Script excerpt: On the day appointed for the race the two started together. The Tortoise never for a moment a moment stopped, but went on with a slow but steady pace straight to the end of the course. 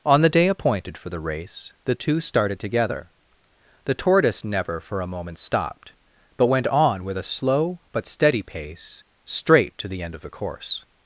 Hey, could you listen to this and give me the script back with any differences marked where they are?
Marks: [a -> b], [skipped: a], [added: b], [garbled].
On the day appointed for the race the two started together. The Tortoise never for a moment [skipped: a moment] stopped, but went on with a slow but steady pace straight to the end of the course.